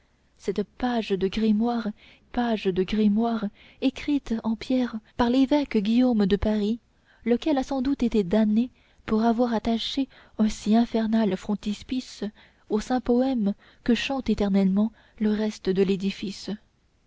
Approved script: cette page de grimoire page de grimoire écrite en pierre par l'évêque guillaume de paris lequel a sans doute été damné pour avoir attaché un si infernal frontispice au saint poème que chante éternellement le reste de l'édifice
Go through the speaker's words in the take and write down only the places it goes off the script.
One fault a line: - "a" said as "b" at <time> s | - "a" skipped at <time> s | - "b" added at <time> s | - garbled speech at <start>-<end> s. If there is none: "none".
none